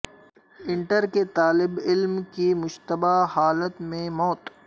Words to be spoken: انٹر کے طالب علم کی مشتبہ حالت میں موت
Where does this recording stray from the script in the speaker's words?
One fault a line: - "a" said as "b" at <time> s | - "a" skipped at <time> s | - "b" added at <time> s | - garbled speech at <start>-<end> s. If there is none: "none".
none